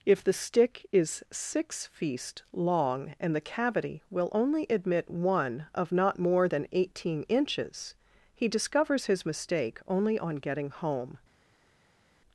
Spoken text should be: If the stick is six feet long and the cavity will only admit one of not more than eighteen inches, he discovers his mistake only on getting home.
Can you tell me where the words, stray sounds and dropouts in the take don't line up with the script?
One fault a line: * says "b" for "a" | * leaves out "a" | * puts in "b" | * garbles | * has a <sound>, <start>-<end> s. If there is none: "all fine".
* says "feast" for "feet"